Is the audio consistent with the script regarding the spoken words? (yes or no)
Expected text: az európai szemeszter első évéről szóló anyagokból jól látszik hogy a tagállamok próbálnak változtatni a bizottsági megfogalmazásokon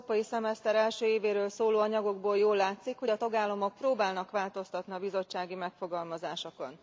yes